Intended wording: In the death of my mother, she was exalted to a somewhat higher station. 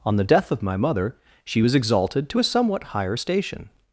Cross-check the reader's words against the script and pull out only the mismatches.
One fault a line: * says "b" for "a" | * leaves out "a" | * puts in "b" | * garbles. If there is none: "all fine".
* says "On" for "In"